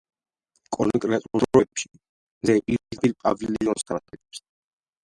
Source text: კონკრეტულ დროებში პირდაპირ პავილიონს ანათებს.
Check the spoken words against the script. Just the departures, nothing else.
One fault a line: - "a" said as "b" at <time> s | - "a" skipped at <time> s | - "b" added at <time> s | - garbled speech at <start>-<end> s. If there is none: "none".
- "მზე" added at 1.9 s